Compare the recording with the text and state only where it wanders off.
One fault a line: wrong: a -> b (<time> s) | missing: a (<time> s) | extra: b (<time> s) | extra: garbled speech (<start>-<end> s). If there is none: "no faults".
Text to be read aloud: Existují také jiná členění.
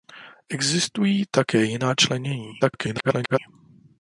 extra: garbled speech (2.6-3.4 s)